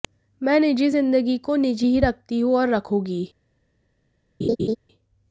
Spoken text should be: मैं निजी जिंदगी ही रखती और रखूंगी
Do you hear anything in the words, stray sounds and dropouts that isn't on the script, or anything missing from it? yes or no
yes